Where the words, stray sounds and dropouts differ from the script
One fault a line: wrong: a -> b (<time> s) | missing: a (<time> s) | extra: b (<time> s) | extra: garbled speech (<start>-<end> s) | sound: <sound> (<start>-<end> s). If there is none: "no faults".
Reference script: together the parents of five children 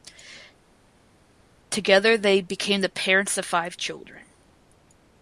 extra: they became (2.2 s)